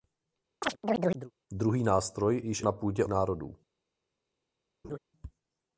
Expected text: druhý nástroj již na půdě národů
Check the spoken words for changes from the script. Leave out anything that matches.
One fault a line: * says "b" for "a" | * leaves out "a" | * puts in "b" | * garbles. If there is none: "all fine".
all fine